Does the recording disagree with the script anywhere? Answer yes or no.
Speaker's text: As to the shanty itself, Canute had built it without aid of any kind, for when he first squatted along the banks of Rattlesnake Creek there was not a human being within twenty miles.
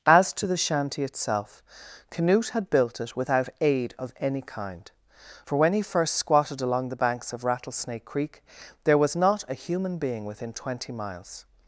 no